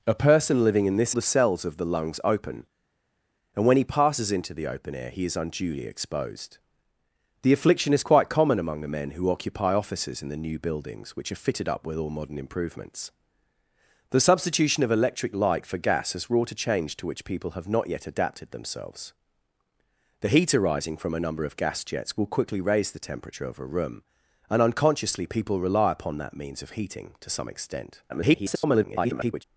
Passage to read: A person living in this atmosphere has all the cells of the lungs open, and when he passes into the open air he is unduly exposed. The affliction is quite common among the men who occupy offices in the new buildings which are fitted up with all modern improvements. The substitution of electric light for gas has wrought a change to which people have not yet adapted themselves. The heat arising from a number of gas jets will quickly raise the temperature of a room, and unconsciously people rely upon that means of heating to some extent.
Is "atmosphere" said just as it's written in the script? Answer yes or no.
no